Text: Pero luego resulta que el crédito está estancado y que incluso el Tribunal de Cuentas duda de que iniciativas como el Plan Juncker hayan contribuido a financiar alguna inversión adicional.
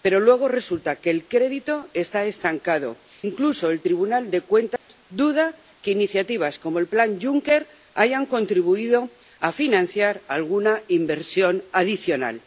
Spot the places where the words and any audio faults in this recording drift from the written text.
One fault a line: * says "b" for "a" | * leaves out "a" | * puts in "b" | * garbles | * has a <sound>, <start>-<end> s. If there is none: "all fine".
* leaves out "y que"
* has a dropout, 4.8-4.9 s